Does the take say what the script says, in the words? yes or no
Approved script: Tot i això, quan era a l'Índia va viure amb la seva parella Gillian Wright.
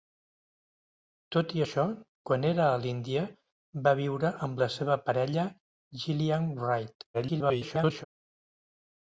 no